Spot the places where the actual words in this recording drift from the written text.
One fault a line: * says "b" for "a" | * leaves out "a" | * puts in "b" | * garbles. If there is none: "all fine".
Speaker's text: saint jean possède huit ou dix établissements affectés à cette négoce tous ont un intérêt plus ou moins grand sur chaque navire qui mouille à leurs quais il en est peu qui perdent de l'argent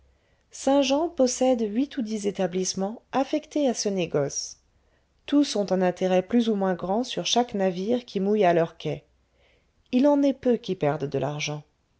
* says "ce" for "cette"